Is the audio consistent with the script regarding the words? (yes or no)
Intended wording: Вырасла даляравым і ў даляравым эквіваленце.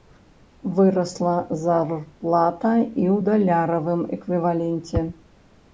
no